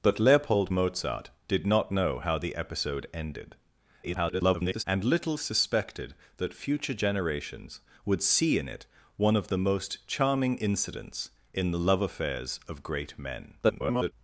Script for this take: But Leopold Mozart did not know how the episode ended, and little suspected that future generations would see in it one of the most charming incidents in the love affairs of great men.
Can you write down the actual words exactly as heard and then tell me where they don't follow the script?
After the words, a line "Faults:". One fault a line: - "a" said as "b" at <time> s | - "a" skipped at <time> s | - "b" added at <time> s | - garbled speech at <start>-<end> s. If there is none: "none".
But Leopold Mozart did not know how the episode ended, [garbled] and little suspected that future generations would see in it one of the most charming incidents in the love affairs of great men. [garbled]
Faults:
- garbled speech at 4.0-4.8 s
- garbled speech at 13.6-14.1 s